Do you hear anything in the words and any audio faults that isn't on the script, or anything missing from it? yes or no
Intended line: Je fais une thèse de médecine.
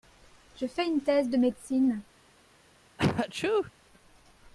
yes